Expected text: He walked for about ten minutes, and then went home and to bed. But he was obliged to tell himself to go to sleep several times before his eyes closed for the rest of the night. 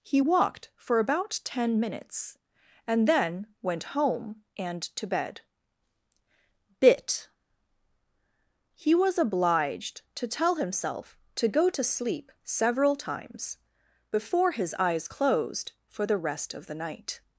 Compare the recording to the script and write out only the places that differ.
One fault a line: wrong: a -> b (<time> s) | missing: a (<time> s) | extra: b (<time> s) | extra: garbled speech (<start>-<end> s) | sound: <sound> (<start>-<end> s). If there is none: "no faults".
wrong: But -> Bit (6.8 s)